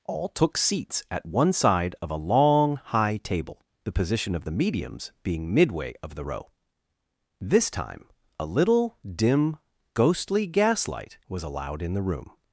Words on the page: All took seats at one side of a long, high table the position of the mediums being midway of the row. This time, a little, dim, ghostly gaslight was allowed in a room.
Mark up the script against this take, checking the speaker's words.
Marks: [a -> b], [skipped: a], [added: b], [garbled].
All took seats at one side of a long, high table the position of the mediums being midway of the row. This time, a little, dim, ghostly gaslight was allowed in [a -> the] room.